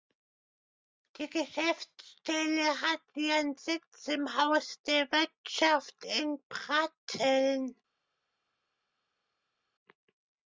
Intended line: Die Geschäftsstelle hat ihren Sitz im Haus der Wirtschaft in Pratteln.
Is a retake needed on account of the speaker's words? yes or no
no